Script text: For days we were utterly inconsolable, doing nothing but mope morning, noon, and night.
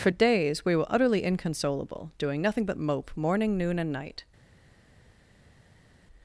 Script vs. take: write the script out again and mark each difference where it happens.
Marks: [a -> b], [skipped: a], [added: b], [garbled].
For days we were utterly inconsolable, doing nothing but mope morning, noon, and night.